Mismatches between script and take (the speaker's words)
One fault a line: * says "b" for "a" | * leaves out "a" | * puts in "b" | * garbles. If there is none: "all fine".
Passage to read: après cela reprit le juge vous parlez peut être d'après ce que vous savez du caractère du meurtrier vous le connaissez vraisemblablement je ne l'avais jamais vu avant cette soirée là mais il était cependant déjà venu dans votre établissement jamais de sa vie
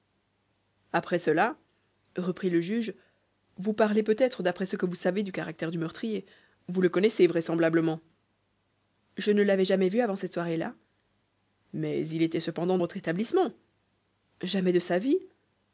* leaves out "déjà venu dans"